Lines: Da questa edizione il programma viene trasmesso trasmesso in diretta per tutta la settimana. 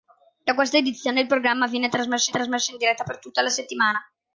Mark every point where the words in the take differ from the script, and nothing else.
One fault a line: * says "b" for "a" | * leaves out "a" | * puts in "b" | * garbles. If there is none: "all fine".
all fine